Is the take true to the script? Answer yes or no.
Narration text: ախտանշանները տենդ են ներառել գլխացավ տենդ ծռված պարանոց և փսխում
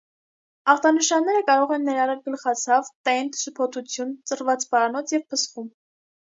no